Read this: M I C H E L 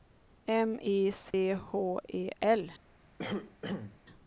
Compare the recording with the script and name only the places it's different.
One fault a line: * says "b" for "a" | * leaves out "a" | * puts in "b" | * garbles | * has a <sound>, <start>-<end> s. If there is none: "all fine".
* has a dropout, 1.3-1.3 s
* has a cough, 3.2-4.0 s